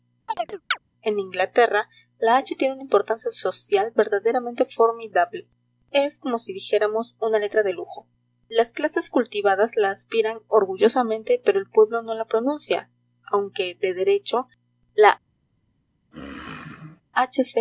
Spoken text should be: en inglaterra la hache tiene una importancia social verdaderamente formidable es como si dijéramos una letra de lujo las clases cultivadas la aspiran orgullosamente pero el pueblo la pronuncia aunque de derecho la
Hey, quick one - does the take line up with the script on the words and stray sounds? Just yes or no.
no